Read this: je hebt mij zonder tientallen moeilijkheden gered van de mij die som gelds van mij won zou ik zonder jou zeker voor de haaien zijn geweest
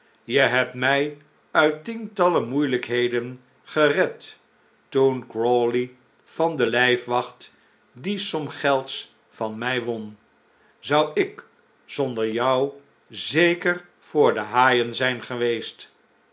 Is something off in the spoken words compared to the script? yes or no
yes